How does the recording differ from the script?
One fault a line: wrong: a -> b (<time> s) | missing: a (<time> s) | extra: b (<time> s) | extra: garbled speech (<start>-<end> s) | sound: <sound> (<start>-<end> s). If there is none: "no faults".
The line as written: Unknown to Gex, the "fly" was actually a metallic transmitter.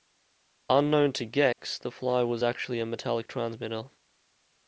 sound: dropout (1.5-1.6 s)